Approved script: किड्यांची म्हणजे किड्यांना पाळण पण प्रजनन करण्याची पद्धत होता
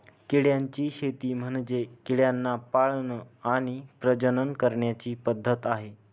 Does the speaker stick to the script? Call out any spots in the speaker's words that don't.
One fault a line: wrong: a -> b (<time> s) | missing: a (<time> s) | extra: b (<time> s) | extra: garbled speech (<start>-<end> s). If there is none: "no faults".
extra: शेती (0.9 s)
wrong: पण -> आणि (3.5 s)
wrong: होता -> आहे (5.7 s)